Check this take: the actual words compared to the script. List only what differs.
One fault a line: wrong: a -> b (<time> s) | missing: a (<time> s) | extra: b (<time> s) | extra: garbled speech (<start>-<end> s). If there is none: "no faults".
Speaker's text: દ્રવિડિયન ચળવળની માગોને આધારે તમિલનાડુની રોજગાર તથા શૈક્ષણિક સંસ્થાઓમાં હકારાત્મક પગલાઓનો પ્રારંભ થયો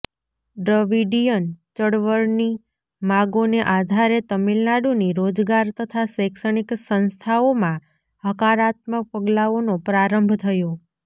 no faults